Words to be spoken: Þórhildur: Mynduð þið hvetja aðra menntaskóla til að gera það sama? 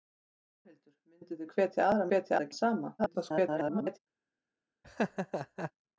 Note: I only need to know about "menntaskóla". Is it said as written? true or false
false